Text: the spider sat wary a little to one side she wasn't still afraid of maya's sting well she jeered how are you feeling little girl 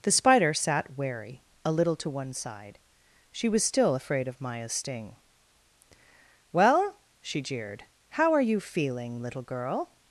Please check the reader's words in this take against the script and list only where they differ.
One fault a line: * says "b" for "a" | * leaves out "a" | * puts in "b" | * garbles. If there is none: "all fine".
* says "was" for "wasn't"